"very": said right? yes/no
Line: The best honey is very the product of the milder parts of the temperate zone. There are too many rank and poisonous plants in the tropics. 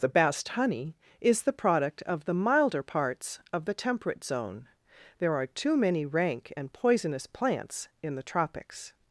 no